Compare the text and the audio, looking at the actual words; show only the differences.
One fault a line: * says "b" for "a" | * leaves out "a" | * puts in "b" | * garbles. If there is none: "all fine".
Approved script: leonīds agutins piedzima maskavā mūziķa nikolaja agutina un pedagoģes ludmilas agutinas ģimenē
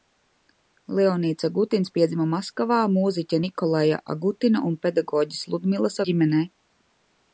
* leaves out "agutinas"